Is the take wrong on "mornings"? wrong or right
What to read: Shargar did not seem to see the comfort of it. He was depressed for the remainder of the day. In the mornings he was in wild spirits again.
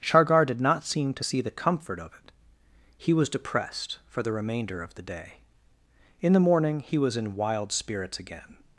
wrong